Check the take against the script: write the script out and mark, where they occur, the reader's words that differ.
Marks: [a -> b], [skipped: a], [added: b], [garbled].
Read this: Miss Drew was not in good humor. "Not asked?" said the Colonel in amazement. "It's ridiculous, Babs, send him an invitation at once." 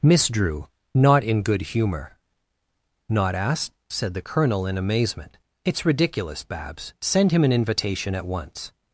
Miss Drew [skipped: was] not in good humor. "Not asked?" said the Colonel in amazement. "It's ridiculous, Babs, send him an invitation at once."